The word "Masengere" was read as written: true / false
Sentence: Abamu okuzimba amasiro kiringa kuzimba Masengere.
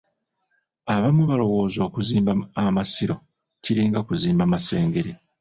true